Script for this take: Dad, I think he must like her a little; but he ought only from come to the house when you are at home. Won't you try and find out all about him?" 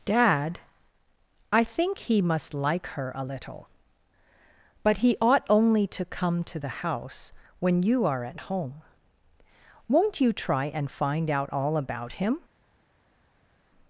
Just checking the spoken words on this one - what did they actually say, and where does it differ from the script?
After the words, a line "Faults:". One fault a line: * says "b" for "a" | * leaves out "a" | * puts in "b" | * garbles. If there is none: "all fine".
Dad, I think he must like her a little; but he ought only to come to the house when you are at home. Won't you try and find out all about him?"
Faults:
* says "to" for "from"